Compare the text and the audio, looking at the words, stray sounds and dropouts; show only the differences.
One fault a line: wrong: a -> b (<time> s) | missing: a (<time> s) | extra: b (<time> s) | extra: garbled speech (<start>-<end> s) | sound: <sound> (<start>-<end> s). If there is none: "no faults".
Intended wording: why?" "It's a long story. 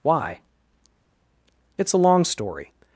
no faults